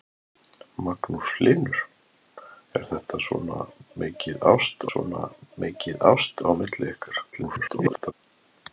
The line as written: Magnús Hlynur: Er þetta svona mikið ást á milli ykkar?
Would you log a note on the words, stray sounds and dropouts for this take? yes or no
yes